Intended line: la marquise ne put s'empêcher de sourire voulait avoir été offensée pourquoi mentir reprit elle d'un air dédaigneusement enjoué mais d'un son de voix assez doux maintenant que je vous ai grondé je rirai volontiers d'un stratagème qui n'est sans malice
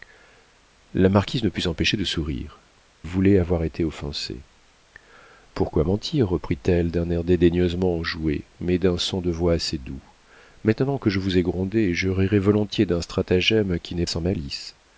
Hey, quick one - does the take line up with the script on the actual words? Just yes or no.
yes